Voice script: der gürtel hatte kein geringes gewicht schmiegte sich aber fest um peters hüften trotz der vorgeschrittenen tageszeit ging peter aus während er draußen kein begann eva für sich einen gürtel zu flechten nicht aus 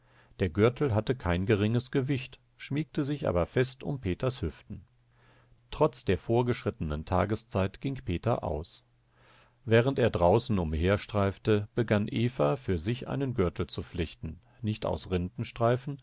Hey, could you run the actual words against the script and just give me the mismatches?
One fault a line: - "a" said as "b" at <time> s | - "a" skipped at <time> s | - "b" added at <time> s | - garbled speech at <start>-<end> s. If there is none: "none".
- "kein" said as "umherstreifte" at 10.6 s